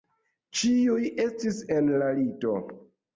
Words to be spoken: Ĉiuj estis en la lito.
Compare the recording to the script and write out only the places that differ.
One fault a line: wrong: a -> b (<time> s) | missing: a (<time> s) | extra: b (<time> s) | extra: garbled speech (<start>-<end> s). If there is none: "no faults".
no faults